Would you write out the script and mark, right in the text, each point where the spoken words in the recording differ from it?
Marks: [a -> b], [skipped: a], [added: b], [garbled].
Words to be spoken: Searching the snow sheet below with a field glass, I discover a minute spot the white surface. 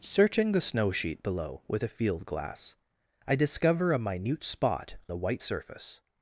Searching the snow sheet below with a field glass, I discover a minute spot the white surface.